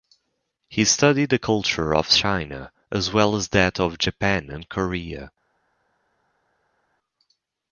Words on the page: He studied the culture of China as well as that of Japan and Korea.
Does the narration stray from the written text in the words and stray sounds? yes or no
no